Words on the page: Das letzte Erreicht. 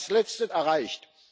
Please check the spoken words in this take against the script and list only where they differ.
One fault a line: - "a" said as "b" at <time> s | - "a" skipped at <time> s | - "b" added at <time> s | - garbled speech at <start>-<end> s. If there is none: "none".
none